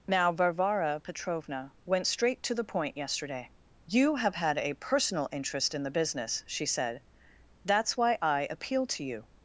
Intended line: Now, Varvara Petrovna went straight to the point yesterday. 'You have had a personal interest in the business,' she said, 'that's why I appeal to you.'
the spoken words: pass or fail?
pass